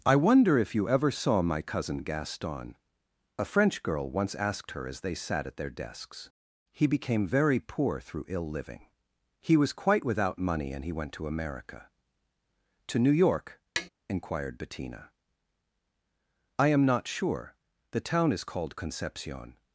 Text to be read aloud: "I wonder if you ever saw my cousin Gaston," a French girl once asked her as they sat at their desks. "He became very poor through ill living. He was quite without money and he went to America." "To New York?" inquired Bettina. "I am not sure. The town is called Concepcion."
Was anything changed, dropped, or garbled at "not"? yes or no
no